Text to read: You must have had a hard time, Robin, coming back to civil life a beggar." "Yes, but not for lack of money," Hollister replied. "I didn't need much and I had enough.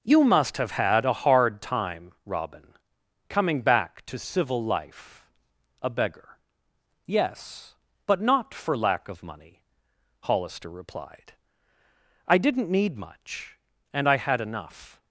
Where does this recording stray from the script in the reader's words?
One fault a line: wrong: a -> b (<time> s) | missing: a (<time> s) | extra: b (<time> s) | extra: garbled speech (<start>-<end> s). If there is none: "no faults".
no faults